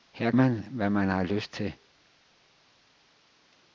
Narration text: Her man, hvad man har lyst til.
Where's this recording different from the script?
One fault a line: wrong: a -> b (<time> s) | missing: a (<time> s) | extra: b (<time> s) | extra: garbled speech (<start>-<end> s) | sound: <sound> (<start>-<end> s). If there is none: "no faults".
no faults